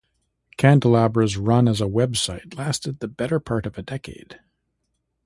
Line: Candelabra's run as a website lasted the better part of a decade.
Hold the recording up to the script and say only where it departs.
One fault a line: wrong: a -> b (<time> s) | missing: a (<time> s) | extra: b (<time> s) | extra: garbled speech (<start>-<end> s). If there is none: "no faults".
no faults